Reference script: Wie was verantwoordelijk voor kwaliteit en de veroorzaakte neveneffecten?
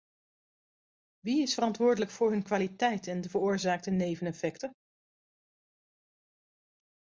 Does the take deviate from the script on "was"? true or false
true